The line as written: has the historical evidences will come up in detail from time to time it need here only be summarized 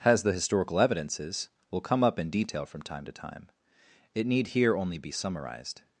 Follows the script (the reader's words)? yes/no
yes